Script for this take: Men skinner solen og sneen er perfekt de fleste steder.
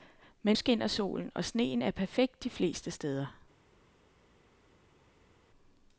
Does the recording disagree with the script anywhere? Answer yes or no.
no